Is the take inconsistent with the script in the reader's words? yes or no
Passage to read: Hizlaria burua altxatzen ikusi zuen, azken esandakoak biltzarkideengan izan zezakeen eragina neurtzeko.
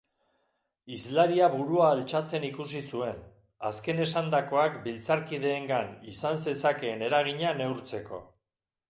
no